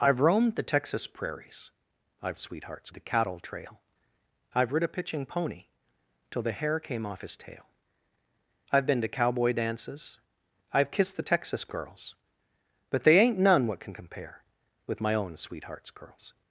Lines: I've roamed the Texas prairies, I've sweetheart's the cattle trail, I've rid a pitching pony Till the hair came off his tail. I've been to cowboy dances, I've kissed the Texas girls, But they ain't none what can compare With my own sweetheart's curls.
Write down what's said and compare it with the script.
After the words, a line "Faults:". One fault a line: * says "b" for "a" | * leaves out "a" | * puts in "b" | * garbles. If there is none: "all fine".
I've roamed the Texas prairies, I've sweetheart's the cattle trail, I've rid a pitching pony Till the hair came off his tail. I've been to cowboy dances, I've kissed the Texas girls, But they ain't none what can compare With my own sweetheart's curls.
Faults:
all fine